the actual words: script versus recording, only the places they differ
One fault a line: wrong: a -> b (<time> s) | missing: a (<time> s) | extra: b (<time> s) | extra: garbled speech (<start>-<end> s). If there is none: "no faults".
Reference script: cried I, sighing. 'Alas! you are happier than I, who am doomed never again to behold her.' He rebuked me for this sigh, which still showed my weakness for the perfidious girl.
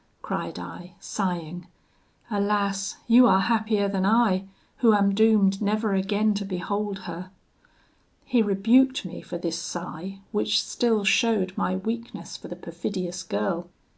no faults